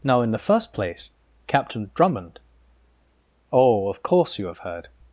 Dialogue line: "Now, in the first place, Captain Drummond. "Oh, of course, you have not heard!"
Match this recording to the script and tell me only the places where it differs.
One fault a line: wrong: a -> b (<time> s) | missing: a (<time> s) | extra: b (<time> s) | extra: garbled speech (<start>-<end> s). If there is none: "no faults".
missing: not (4.6 s)